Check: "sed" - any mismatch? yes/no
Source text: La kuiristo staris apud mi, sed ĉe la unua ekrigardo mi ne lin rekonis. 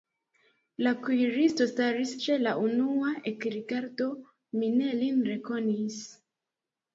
yes